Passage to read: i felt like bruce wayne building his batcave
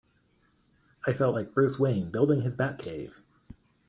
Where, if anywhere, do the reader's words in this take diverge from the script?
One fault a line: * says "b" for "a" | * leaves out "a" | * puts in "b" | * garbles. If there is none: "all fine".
all fine